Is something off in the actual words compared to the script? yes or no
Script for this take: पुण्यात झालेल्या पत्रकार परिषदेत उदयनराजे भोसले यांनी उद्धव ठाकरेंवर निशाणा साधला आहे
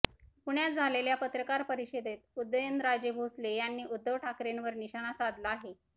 no